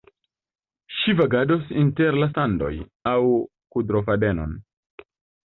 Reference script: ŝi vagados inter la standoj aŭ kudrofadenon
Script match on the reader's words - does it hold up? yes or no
yes